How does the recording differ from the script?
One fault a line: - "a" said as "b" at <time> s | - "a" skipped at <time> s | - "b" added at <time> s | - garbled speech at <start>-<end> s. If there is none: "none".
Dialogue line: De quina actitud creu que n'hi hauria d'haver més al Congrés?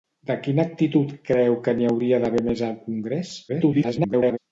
- garbled speech at 3.5-4.4 s